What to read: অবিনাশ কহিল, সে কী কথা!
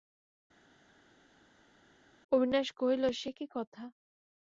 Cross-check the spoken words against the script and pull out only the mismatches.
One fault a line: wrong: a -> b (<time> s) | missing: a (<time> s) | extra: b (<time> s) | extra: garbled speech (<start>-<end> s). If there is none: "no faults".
no faults